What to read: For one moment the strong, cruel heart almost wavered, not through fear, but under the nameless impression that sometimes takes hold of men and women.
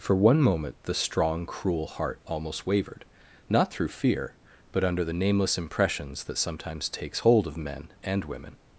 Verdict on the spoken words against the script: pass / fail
fail